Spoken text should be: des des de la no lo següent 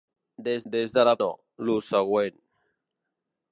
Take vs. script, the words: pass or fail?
pass